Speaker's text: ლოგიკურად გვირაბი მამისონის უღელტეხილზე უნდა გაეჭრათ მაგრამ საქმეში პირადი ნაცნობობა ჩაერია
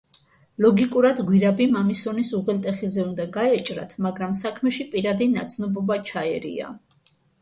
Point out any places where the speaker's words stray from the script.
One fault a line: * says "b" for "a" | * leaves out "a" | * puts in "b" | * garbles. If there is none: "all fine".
all fine